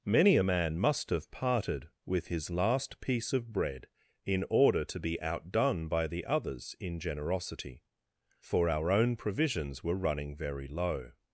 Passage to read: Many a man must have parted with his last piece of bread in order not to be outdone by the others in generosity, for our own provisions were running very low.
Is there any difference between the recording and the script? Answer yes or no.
yes